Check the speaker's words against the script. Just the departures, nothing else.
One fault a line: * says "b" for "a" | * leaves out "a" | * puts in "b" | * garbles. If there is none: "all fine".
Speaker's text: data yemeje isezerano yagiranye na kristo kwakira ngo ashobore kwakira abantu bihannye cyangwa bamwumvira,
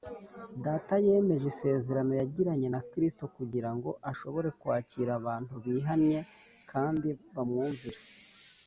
* says "kugira" for "kwakira"
* says "kandi" for "cyangwa"